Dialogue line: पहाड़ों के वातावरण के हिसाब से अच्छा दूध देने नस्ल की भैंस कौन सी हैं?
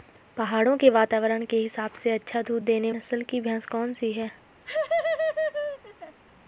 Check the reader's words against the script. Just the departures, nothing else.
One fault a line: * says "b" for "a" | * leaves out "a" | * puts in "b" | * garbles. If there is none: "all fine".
all fine